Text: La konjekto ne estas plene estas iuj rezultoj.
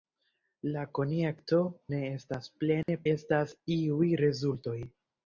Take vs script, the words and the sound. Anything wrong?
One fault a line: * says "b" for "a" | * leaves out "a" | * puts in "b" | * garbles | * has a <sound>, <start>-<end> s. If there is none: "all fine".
* has a dropout, 2.8-2.9 s